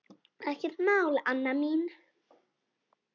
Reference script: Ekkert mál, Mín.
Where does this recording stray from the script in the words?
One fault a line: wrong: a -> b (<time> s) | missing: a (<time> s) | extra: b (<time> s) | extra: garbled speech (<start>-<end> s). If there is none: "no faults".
extra: Anna (1.2 s)